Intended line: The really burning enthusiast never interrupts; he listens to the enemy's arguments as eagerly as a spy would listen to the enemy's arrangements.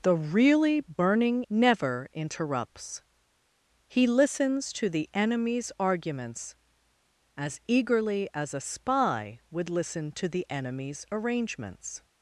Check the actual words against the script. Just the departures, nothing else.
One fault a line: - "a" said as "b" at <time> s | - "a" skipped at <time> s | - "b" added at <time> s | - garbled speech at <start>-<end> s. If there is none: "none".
- "enthusiast" skipped at 1.4 s